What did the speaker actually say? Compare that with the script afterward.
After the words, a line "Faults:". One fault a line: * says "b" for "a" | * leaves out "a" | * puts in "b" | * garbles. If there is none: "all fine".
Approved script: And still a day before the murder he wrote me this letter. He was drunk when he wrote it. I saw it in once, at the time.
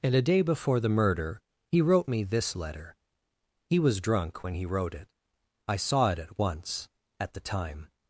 And a day before the murder he wrote me this letter. He was drunk when he wrote it. I saw it at once, at the time.
Faults:
* leaves out "still"
* says "at" for "in"